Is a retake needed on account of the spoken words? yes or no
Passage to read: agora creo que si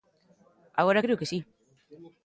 no